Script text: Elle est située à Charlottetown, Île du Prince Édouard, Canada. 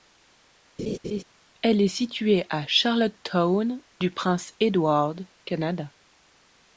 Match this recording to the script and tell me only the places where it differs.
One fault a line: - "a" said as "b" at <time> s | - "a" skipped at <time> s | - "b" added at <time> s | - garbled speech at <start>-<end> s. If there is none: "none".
- "Île" skipped at 3.8 s